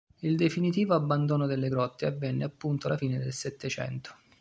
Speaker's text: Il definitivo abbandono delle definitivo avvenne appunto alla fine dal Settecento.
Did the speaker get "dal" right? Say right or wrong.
wrong